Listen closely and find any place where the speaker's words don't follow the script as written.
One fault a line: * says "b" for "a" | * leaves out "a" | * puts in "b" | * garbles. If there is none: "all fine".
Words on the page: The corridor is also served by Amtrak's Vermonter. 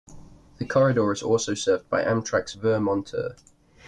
all fine